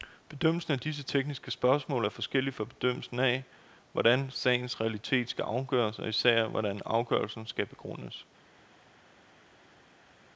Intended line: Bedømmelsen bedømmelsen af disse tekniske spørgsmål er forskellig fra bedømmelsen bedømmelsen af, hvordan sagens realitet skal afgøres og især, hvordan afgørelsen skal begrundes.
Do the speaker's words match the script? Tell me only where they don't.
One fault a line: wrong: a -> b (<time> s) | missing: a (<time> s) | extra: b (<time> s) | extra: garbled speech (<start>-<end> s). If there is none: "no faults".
missing: bedømmelsen (0.7 s)
missing: bedømmelsen (3.2 s)